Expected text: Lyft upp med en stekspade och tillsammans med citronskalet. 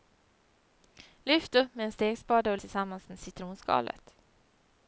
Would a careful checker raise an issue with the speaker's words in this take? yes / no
no